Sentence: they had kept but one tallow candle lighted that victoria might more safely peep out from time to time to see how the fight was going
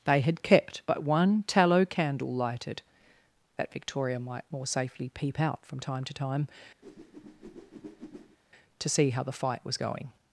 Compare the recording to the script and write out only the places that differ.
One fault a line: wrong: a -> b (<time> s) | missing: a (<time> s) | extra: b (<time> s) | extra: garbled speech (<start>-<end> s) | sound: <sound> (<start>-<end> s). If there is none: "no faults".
sound: whoosh (6.8-8.4 s)